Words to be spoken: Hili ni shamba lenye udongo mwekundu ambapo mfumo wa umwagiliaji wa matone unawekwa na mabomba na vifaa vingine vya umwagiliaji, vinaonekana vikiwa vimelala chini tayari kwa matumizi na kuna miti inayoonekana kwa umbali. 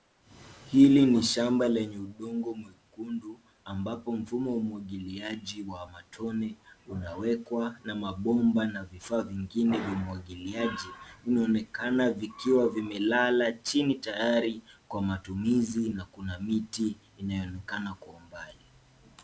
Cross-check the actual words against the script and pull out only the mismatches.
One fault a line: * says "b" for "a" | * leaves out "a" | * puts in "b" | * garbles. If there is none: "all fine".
all fine